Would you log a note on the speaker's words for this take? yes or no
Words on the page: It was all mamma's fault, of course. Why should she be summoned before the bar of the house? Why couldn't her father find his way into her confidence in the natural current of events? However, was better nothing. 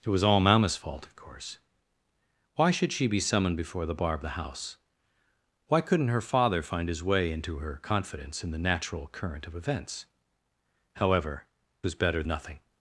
no